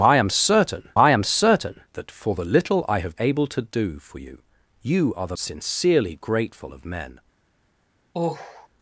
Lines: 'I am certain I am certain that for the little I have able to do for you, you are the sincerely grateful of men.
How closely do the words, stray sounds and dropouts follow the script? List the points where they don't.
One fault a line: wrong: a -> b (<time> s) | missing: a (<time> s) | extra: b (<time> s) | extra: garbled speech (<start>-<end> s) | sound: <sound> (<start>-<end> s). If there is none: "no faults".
sound: sigh (8.1-8.7 s)